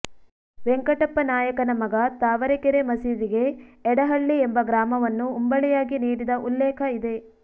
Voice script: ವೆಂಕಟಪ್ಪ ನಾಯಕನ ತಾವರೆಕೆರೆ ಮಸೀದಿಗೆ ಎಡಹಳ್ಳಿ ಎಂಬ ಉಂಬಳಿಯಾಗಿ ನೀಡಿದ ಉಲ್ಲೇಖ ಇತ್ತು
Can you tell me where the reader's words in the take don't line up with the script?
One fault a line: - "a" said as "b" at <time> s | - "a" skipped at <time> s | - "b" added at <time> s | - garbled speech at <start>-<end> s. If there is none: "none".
- "ಮಗ" added at 1.8 s
- "ಗ್ರಾಮವನ್ನು" added at 4.6 s
- "ಇತ್ತು" said as "ಇದೆ" at 7.0 s